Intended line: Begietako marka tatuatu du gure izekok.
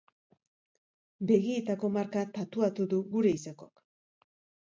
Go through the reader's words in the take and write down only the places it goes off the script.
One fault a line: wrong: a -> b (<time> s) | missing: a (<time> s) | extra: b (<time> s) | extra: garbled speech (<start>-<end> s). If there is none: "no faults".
no faults